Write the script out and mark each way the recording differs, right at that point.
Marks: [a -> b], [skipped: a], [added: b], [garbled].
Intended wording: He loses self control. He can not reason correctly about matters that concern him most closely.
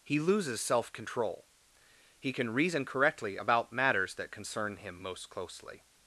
He loses self control. He can [skipped: not] reason correctly about matters that concern him most closely.